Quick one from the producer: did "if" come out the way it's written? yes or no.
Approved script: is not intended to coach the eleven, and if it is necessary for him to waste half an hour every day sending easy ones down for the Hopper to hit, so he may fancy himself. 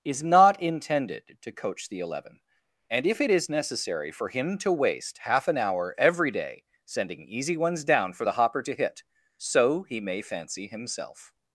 yes